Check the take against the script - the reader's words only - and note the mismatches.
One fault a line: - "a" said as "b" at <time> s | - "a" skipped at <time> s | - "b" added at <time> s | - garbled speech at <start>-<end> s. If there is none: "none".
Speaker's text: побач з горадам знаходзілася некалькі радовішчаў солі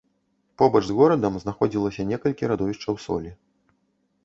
none